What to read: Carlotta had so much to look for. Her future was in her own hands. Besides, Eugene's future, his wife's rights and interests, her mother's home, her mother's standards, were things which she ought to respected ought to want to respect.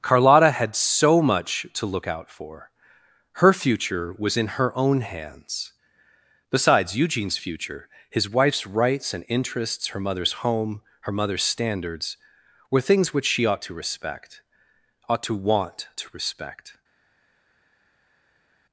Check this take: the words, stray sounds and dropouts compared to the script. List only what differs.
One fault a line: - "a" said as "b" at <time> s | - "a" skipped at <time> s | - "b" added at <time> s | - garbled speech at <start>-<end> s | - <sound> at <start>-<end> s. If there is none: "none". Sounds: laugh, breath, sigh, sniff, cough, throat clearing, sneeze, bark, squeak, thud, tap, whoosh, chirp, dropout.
- "out" added at 2.1 s
- "respected" said as "respect" at 13.7 s